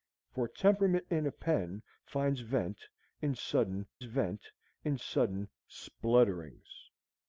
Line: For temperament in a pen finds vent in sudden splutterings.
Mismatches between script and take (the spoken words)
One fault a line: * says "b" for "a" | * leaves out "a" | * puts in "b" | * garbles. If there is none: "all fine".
* puts in "vent in sudden"